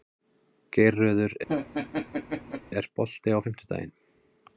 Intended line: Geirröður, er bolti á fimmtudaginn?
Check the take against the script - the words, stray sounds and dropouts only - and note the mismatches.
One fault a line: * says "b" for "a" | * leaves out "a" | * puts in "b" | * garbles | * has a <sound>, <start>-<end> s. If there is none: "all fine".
* has a laugh, 1.5-2.6 s